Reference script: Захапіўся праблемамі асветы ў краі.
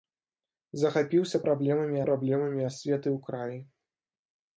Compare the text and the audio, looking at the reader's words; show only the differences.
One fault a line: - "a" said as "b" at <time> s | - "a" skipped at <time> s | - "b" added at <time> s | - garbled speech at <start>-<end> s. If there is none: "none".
- "праблемамі" added at 2.0 s